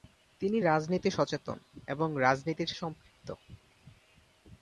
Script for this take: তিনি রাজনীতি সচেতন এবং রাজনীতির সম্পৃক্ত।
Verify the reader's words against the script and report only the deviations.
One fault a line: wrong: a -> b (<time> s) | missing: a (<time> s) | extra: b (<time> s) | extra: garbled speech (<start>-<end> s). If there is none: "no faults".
no faults